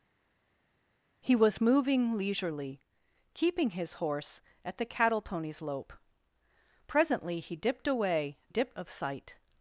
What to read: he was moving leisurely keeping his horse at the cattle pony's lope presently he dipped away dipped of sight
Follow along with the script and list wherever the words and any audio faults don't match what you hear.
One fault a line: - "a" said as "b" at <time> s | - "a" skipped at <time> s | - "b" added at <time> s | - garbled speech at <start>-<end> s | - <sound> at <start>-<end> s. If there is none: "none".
none